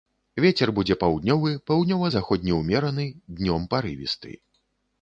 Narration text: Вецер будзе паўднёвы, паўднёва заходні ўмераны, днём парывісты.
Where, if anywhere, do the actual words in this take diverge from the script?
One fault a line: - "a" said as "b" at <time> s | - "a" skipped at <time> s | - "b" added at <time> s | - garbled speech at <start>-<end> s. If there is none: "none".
none